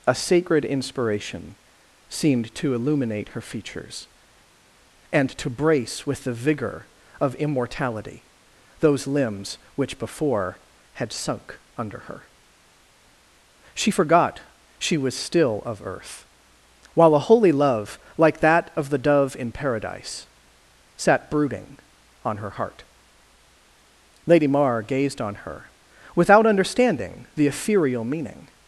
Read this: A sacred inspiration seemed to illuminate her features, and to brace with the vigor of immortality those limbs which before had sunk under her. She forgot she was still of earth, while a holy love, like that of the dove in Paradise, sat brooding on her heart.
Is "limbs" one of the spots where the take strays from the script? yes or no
no